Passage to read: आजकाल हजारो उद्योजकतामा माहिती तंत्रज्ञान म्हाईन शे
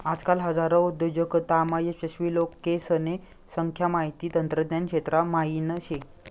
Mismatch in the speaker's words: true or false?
true